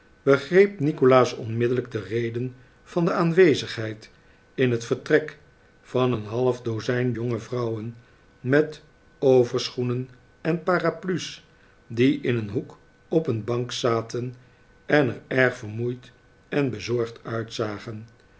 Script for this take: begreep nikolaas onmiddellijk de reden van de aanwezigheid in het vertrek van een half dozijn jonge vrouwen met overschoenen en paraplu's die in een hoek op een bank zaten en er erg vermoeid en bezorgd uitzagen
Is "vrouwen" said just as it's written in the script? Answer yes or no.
yes